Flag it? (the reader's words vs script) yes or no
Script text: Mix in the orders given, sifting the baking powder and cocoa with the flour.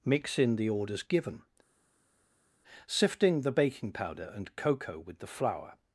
no